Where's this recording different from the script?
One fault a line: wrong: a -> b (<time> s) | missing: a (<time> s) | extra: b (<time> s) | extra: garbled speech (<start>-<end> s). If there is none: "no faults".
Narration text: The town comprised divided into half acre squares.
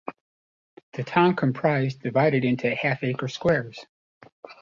no faults